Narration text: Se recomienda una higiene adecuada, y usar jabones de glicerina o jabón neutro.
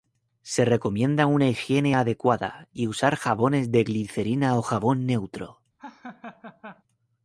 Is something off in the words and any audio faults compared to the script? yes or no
yes